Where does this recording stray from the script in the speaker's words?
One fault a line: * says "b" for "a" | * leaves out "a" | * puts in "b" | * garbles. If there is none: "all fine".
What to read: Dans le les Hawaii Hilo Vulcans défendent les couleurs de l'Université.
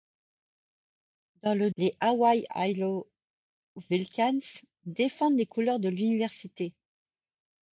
all fine